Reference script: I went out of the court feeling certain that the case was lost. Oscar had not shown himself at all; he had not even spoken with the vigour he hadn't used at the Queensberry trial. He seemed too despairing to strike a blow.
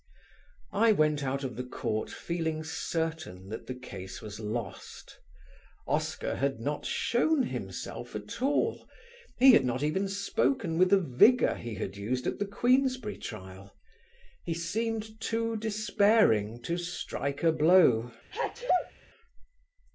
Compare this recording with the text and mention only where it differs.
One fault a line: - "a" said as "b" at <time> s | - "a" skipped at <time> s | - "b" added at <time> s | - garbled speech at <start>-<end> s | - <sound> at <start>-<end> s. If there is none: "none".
- "hadn't" said as "had" at 11.7 s
- sneeze at 18.3-18.9 s